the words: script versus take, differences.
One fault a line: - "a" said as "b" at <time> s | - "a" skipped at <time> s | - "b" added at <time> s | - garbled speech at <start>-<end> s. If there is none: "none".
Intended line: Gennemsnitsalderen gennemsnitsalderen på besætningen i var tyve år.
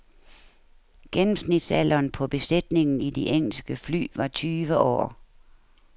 - "gennemsnitsalderen" skipped at 2.1 s
- "de engelske fly" added at 3.1 s